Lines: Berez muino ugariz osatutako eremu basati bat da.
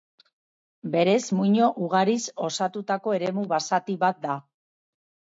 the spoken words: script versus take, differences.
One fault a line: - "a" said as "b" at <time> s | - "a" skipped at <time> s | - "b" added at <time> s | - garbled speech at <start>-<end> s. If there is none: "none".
none